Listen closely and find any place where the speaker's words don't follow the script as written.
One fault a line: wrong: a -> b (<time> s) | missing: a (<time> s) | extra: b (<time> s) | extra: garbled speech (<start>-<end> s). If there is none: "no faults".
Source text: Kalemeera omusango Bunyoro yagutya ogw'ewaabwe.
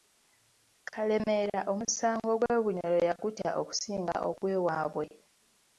extra: gw'e (2.4 s)
extra: okusinga (3.6 s)